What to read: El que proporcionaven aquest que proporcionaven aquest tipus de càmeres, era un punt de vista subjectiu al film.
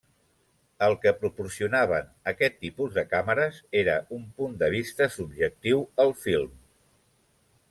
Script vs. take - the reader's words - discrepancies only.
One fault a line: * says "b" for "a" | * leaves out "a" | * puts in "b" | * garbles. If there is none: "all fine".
* leaves out "que proporcionaven aquest"